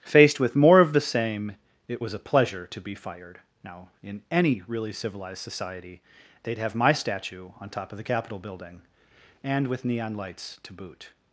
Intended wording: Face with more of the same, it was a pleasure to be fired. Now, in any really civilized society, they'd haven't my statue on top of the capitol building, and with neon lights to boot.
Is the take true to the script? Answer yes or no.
no